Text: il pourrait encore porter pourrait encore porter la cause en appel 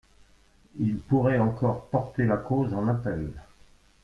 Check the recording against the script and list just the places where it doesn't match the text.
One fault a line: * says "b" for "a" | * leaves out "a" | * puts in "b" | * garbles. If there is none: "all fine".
* leaves out "pourrait encore porter"